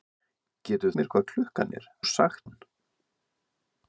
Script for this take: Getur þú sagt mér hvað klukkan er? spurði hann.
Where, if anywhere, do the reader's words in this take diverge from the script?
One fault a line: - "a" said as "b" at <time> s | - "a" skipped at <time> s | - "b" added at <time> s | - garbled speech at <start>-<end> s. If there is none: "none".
- "þú sagt" skipped at 0.9 s
- "spurði" said as "sagt" at 2.1 s